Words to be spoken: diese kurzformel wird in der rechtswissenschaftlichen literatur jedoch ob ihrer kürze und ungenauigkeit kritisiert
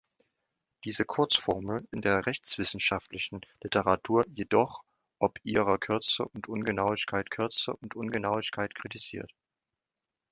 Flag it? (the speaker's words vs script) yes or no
yes